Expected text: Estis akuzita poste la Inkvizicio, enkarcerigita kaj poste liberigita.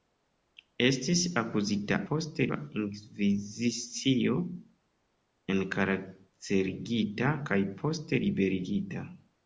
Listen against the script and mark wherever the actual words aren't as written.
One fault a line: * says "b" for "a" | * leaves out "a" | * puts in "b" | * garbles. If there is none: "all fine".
all fine